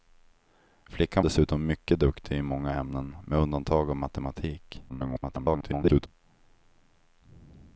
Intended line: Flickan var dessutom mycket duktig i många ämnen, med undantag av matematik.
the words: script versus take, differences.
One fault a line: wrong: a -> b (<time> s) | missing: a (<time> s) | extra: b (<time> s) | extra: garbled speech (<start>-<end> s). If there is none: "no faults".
missing: var (1.2 s)
extra: garbled speech (4.9-6.1 s)